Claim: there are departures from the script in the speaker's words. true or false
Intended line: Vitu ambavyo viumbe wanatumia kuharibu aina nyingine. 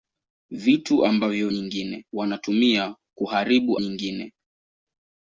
true